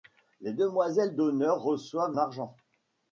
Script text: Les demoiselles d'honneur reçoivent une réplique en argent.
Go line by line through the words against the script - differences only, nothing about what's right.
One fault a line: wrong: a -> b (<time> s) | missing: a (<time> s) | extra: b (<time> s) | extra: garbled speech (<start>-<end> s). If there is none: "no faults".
missing: une réplique en (2.2 s)